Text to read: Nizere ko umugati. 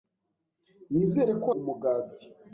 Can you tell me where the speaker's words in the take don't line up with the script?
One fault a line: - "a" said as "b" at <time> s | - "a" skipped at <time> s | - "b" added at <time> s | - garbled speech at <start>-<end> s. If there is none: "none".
none